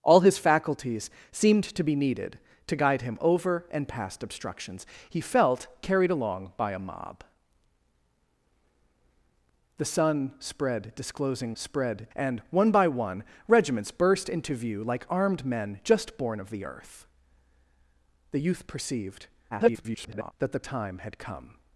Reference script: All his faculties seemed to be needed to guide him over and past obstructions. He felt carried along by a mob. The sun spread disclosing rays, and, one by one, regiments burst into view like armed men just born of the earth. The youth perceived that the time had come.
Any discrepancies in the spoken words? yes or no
yes